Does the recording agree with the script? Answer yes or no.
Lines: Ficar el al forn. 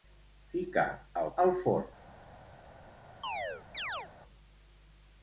yes